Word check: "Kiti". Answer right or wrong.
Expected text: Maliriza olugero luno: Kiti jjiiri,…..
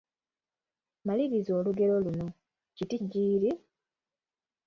right